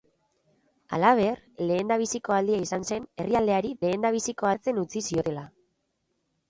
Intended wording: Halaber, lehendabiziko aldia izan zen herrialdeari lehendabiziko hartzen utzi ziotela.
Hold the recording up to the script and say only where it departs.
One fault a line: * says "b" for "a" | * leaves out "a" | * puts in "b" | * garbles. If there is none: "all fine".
all fine